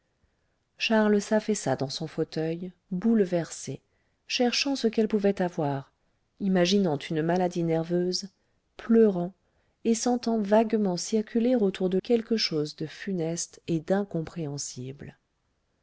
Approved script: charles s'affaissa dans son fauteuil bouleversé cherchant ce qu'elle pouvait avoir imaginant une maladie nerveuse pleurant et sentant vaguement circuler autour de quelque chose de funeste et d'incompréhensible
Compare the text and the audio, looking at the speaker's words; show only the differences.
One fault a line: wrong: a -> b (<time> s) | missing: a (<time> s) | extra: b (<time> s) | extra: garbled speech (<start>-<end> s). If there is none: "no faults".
no faults